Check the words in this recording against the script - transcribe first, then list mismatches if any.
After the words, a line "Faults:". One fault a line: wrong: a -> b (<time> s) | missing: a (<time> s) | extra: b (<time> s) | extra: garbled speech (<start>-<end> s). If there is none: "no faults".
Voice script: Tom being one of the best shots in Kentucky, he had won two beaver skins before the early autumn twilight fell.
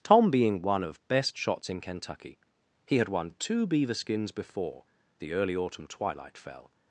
Tom being one of best shots in Kentucky, he had won two beaver skins before the early autumn twilight fell.
Faults:
missing: the (1.1 s)